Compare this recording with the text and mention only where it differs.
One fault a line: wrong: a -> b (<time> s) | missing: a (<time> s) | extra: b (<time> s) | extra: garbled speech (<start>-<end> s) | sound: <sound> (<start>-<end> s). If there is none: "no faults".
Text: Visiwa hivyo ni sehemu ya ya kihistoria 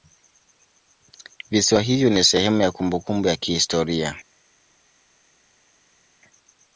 extra: kumbukumbu (2.7 s)